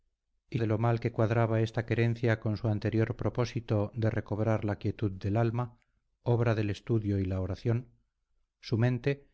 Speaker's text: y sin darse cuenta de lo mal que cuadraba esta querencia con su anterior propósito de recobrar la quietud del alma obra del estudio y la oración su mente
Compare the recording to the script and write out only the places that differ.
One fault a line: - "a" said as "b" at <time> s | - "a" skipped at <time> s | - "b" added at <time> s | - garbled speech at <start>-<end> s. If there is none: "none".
- "sin darse cuenta" skipped at 0.6 s